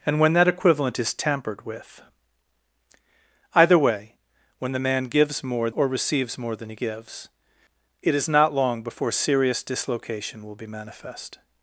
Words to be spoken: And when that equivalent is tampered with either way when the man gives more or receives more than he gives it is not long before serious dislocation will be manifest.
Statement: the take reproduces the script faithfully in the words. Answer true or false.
true